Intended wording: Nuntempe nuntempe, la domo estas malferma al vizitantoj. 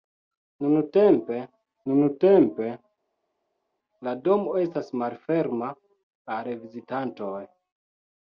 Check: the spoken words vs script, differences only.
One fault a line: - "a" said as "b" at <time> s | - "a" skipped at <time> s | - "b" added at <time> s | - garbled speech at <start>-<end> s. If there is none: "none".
none